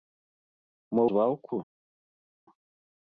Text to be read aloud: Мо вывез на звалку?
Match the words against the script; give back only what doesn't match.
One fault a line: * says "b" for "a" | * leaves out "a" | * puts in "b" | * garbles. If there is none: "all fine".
* leaves out "вывез на"